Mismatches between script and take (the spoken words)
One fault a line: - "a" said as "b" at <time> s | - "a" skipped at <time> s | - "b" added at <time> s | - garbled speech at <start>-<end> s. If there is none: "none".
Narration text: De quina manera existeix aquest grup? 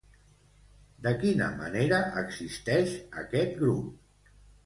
none